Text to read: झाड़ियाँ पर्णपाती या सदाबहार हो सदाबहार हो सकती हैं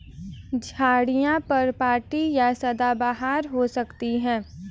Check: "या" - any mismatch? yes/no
no